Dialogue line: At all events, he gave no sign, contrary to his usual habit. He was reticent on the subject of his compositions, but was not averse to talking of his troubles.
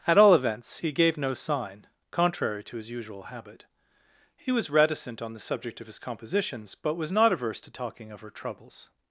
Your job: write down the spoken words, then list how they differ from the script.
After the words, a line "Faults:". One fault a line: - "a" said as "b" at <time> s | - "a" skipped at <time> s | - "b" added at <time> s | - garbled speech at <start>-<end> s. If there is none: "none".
At all events, he gave no sign, contrary to his usual habit. He was reticent on the subject of his compositions, but was not averse to talking of her troubles.
Faults:
- "his" said as "her" at 8.2 s